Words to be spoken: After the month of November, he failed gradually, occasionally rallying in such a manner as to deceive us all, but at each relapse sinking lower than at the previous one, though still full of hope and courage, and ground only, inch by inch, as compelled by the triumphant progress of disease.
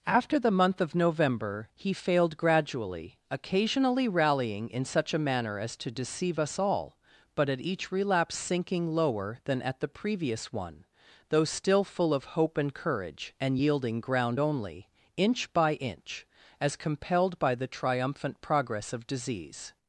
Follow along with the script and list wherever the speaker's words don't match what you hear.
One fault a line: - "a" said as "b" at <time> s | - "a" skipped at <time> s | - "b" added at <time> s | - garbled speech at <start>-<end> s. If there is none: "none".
- "yielding" added at 13.6 s